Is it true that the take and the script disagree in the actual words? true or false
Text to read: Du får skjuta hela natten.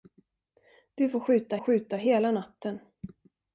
true